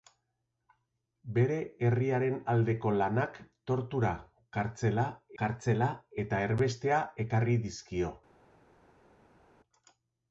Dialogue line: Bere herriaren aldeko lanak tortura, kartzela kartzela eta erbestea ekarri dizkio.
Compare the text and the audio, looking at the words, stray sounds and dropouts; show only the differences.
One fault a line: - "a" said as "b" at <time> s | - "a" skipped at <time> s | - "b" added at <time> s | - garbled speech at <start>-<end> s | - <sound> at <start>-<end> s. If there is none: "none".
none